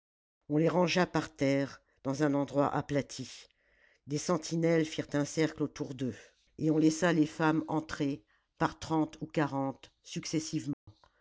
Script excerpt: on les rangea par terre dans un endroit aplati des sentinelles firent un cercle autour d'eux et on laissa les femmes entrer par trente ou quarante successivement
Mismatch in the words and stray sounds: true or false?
true